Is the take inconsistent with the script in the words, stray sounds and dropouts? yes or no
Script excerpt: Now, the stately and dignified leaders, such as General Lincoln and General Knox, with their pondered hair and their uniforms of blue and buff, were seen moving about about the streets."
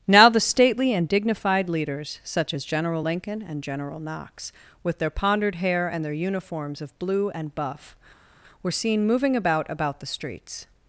no